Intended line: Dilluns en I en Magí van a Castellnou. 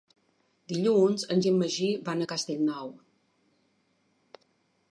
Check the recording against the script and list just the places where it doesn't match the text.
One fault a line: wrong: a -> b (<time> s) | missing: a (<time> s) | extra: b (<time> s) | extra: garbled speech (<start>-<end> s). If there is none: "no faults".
no faults